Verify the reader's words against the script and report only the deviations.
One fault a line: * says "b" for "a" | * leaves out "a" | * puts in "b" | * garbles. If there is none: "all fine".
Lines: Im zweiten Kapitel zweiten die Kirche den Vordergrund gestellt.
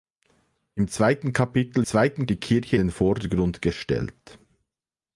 all fine